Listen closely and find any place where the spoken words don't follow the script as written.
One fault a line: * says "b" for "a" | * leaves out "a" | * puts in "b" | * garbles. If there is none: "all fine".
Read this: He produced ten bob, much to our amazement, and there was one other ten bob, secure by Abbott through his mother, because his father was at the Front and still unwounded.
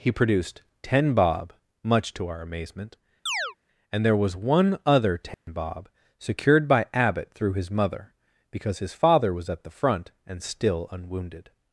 * says "secured" for "secure"